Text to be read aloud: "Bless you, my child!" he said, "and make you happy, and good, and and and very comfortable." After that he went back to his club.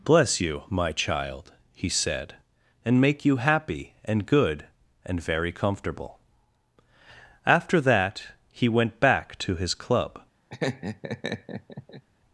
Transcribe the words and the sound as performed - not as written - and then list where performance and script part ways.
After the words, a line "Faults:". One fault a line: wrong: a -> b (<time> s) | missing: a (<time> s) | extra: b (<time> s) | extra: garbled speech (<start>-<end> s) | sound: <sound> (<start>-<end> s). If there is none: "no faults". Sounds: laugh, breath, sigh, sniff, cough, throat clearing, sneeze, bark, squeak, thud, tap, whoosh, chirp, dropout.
"Bless you, my child!" he said, "and make you happy, and good, and very comfortable." After that he went back to his club.
Faults:
missing: and and (5.2 s)
sound: laugh (10.5-12.0 s)